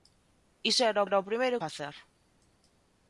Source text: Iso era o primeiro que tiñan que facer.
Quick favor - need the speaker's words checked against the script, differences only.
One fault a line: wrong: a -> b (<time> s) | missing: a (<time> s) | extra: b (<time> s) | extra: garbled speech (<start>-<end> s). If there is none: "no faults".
extra: era (1.1 s)
missing: que tiñan que (1.6 s)